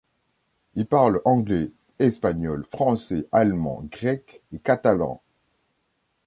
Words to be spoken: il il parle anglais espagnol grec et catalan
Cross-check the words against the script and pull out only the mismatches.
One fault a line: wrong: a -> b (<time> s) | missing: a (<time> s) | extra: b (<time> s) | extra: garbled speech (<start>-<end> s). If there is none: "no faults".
missing: il (0.9 s)
extra: français allemand (2.7 s)